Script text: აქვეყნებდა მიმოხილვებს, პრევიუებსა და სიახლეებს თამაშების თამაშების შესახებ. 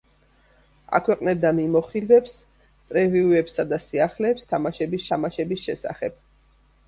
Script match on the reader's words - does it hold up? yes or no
yes